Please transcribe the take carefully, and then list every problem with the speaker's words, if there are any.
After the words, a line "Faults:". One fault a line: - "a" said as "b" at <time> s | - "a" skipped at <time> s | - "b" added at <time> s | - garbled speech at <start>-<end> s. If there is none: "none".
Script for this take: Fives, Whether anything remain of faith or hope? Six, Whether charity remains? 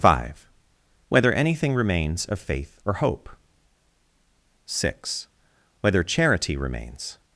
Five, Whether anything remains of faith or hope? Six, Whether charity remains?
Faults:
- "Fives" said as "Five" at 0.0 s
- "remain" said as "remains" at 1.8 s